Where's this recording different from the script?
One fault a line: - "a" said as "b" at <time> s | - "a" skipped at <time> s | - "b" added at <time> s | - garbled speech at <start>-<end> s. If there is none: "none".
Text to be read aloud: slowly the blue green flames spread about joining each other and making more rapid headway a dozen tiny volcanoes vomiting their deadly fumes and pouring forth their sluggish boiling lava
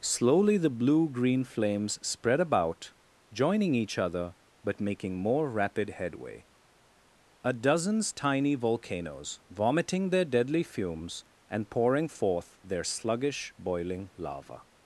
- "and" said as "but" at 4.6 s
- "dozen" said as "dozens" at 7.5 s